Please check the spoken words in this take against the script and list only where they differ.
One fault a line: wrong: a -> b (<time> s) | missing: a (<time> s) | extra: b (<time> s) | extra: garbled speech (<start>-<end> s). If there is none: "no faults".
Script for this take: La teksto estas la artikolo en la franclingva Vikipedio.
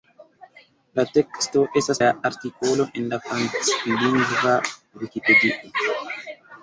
no faults